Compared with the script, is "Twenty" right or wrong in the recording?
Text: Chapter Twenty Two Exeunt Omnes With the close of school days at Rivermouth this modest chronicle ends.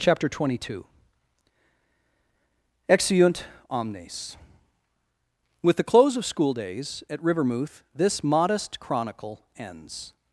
right